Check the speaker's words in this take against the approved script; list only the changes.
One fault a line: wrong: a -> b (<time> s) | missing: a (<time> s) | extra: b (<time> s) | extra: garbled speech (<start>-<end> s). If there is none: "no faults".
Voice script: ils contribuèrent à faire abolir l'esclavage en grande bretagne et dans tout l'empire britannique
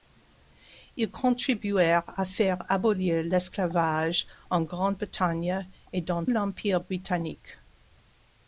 missing: tout (6.2 s)